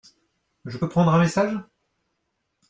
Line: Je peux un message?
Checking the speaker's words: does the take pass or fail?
fail